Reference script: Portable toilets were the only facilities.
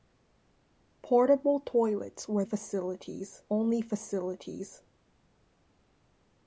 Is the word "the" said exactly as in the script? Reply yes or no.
no